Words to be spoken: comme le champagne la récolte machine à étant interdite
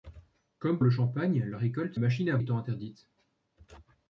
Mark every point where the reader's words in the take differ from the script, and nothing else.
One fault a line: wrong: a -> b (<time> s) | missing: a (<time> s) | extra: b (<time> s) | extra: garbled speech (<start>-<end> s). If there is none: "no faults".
no faults